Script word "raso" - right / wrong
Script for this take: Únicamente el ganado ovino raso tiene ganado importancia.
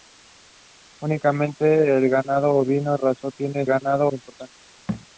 right